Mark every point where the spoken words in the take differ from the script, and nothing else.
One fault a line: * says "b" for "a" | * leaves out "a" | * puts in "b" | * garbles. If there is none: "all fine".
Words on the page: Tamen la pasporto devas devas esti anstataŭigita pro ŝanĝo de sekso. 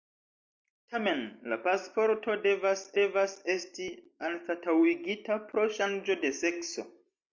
all fine